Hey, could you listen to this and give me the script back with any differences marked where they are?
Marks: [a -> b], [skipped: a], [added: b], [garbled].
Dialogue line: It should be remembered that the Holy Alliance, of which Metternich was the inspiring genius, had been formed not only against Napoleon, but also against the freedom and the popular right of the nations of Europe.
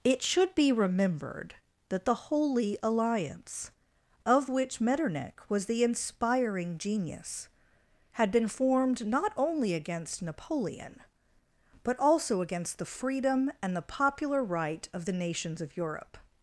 It should be remembered that the Holy Alliance, of which Metternich was the inspiring genius, had been formed not only against Napoleon, but also against the freedom and the popular right of the nations of Europe.